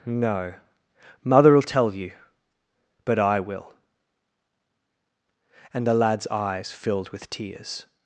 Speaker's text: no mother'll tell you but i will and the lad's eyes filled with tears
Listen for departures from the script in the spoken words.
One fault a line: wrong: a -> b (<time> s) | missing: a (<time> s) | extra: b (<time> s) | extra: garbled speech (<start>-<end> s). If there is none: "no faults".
no faults